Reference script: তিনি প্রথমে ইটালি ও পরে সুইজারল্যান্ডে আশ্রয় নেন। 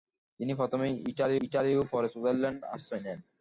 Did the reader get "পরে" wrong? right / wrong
right